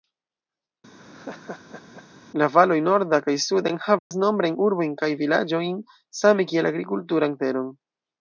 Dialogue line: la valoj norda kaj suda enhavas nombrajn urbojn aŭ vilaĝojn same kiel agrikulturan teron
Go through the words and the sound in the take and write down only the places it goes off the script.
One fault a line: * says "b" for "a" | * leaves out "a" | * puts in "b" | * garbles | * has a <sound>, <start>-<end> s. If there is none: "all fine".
* has a laugh, 1.0-2.0 s
* has a dropout, 4.0-4.1 s
* says "kaj" for "aŭ"